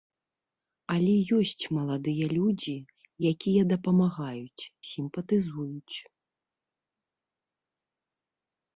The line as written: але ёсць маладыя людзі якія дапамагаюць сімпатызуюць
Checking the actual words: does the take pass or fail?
pass